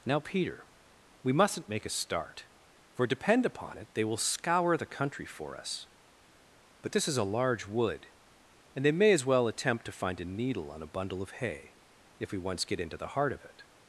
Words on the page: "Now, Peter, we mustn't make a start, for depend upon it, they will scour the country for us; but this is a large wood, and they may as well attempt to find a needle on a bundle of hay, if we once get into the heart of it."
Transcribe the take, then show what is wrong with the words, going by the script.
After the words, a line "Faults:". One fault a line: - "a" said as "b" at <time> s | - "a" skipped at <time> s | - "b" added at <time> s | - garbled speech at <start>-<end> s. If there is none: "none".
"Now, Peter, we mustn't make a start, for depend upon it, they will scour the country for us; but this is a large wood, and they may as well attempt to find a needle on a bundle of hay, if we once get into the heart of it."
Faults:
none